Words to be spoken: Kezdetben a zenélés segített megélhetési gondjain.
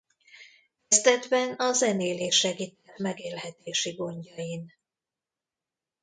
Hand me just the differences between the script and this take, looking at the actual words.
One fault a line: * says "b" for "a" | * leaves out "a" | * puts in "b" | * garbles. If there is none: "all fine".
all fine